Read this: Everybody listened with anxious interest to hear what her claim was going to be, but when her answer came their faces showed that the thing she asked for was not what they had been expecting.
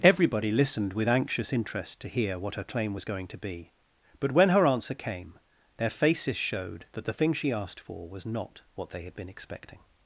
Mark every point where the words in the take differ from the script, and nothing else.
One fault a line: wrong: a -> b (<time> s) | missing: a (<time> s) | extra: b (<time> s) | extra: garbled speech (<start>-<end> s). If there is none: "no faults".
no faults